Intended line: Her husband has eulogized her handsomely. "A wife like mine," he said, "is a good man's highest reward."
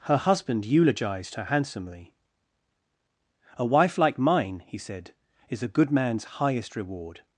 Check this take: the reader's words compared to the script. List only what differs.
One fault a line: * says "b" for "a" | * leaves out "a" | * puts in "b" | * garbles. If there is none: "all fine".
* leaves out "has"